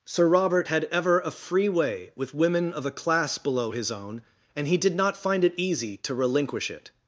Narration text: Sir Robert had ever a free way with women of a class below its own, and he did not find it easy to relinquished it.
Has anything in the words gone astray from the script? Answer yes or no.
yes